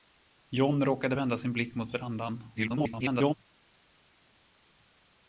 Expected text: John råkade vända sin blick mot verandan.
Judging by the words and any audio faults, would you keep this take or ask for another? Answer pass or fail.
fail